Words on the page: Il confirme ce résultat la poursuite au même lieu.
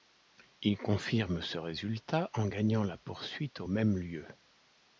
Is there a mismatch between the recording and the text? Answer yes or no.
yes